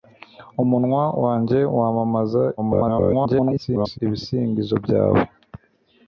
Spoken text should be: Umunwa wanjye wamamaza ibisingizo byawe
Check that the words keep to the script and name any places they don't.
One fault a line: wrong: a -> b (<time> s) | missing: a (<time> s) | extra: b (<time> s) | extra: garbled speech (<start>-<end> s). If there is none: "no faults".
extra: garbled speech (2.6-4.0 s)